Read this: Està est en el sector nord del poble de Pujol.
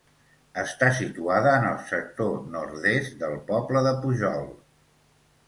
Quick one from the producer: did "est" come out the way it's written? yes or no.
no